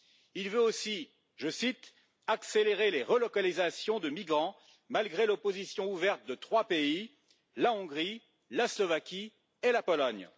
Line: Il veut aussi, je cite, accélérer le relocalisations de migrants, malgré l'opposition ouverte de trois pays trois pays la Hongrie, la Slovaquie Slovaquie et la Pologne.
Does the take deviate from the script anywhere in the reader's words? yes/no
yes